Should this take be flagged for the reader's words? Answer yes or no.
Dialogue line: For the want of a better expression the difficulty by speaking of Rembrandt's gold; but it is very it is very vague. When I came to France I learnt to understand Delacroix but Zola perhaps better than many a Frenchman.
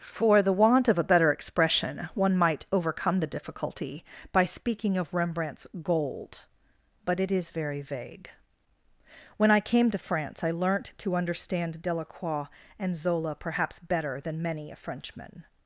yes